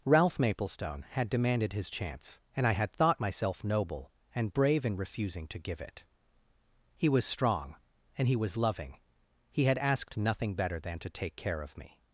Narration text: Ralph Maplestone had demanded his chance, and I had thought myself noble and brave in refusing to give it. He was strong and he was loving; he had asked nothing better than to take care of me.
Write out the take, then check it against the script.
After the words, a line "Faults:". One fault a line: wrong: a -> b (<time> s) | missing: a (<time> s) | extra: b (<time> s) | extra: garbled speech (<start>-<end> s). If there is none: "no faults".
Ralph Maplestone had demanded his chance, and I had thought myself noble and brave in refusing to give it. He was strong and he was loving; he had asked nothing better than to take care of me.
Faults:
no faults